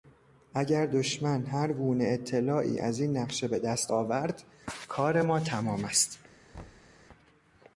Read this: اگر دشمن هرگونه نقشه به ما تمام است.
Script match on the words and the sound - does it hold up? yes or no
no